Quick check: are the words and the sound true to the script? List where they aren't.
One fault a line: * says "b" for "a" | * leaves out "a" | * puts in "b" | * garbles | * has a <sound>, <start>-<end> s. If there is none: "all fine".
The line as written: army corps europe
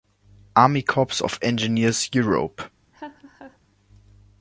* puts in "of engineers"
* has a laugh, 2.9-3.6 s